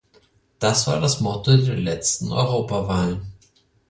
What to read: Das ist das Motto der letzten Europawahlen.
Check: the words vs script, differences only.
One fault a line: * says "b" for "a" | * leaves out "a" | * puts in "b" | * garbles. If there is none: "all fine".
* says "war" for "ist"